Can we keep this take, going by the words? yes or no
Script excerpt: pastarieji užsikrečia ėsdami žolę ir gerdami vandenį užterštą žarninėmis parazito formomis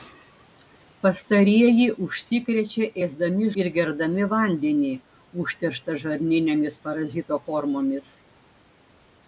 no